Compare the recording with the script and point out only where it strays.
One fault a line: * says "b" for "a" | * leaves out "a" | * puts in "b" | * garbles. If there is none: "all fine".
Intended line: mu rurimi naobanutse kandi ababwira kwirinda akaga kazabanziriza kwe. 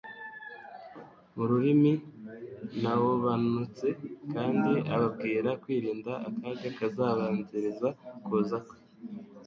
* puts in "kuza"